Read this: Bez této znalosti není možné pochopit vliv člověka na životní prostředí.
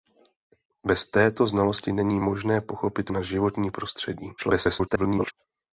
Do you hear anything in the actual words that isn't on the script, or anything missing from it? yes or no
yes